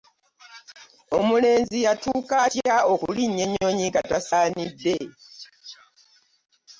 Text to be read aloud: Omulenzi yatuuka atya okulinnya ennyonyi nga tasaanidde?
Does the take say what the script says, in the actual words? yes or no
yes